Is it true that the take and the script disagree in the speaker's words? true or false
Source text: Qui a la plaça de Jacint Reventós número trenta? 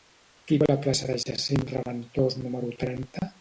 false